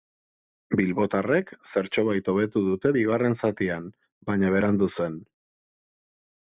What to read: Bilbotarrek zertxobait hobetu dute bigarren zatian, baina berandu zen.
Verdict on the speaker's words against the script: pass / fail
pass